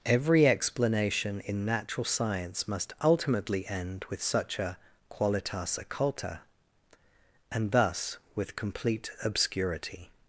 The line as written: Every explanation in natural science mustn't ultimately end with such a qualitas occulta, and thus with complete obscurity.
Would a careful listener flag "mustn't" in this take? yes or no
yes